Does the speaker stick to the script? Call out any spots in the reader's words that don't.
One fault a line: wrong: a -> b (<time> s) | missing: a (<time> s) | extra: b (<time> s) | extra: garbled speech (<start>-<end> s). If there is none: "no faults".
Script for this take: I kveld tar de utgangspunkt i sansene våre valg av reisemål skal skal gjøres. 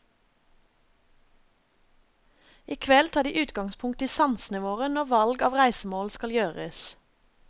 extra: når (4.9 s)
missing: skal (6.3 s)